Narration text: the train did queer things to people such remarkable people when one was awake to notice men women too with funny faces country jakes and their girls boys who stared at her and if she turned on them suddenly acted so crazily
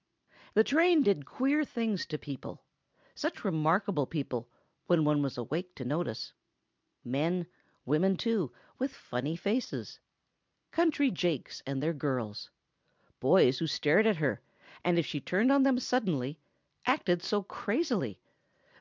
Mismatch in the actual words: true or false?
false